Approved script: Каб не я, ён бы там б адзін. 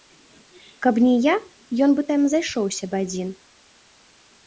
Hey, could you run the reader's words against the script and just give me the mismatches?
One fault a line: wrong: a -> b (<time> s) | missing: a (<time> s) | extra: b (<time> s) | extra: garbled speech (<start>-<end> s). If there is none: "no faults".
extra: зайшоўся (2.4 s)